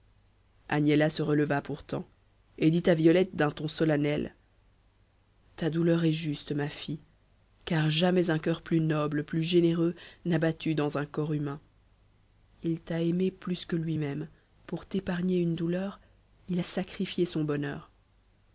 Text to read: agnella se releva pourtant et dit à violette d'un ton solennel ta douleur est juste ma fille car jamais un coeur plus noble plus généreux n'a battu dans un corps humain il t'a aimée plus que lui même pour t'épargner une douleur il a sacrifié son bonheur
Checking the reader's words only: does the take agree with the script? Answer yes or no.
yes